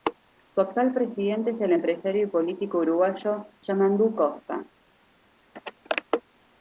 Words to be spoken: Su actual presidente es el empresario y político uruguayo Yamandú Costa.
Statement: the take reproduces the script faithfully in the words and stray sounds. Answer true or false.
true